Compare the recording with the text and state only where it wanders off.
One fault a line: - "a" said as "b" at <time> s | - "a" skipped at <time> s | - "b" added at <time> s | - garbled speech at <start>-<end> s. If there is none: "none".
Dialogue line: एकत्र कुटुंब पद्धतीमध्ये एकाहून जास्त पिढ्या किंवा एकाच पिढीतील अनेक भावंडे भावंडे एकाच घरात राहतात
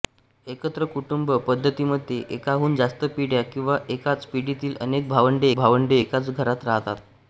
none